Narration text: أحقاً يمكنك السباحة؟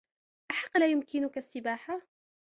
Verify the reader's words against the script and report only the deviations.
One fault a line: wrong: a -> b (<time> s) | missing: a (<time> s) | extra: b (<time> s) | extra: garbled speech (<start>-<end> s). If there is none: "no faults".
extra: لا (0.7 s)